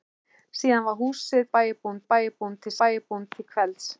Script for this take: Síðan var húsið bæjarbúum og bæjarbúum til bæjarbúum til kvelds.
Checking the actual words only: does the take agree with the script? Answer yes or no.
yes